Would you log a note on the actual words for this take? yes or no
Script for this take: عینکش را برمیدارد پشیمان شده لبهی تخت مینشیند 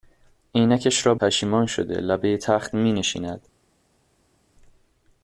yes